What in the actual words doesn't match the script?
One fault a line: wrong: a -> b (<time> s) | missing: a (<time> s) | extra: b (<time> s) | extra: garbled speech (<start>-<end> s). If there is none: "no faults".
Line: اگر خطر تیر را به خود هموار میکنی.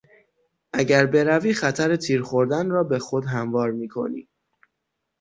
extra: بروی (1.1 s)
extra: خوردن (2.2 s)